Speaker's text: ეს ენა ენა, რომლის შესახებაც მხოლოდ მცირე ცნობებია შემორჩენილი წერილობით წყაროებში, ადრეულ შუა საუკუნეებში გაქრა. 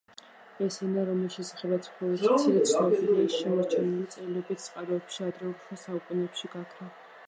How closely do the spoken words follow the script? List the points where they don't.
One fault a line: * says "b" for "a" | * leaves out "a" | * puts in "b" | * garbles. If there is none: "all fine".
* leaves out "ენა"